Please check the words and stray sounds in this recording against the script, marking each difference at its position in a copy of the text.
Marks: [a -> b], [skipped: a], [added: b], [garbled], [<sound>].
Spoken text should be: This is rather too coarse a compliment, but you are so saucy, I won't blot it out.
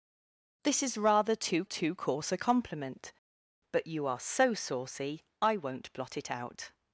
This is rather too [added: too] coarse a compliment, but you are so saucy, I won't blot it out.